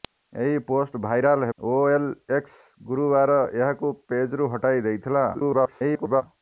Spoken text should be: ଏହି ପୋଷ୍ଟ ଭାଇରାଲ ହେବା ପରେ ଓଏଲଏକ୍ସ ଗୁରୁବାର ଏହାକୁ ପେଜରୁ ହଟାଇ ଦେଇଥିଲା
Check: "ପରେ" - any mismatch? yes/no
yes